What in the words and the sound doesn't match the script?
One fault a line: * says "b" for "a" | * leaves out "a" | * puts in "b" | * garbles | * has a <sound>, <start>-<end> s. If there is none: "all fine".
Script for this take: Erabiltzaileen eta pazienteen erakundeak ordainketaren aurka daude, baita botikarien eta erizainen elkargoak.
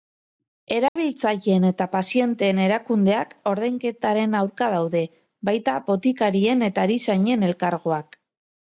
* has a dropout, 0.9-1.0 s